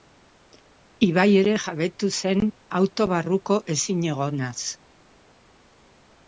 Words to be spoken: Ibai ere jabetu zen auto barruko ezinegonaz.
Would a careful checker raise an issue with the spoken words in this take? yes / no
no